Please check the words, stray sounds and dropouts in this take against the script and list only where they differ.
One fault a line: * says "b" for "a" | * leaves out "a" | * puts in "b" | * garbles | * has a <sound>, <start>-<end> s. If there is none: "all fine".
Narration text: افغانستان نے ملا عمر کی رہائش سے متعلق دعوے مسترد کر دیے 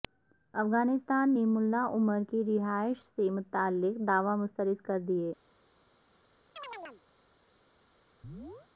* has a chirp, 6.6-7.0 s
* has a chirp, 8.2-8.7 s